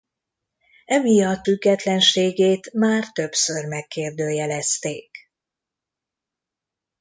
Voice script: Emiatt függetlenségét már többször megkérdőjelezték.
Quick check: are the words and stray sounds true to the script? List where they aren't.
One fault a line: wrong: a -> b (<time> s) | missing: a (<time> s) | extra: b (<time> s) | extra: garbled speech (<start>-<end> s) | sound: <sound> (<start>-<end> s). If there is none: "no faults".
no faults